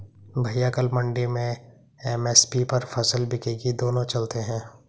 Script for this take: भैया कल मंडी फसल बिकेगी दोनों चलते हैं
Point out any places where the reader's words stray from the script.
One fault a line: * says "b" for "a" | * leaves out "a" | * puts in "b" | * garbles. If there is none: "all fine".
* puts in "में एम.एस.पी पर"